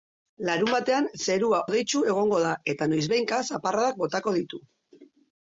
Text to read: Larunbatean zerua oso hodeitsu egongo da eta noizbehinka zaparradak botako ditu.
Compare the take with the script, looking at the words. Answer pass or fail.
fail